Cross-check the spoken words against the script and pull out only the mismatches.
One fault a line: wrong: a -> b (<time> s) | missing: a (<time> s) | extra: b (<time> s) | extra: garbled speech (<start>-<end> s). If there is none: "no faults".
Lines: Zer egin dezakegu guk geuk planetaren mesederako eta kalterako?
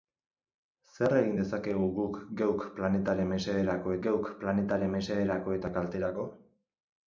extra: geuk planetaren mesederako (4.1 s)